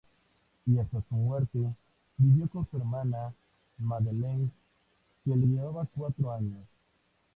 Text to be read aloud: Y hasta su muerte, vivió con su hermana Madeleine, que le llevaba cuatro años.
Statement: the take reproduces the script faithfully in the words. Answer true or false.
true